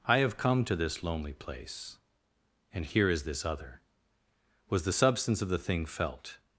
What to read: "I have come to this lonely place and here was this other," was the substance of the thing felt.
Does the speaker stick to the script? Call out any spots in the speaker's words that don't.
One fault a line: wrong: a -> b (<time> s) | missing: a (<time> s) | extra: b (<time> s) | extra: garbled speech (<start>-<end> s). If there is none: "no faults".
wrong: was -> is (3.1 s)